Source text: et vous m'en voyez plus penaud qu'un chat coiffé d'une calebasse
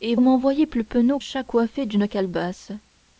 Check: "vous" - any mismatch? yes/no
yes